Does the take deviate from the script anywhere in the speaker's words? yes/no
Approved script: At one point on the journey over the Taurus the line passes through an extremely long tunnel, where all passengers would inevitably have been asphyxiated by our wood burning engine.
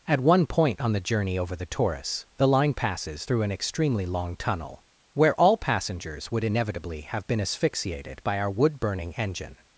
no